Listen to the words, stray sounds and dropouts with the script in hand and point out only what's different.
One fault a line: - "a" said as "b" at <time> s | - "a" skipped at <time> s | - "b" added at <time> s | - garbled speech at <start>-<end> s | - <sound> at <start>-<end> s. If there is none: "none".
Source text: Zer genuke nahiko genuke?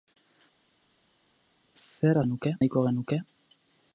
none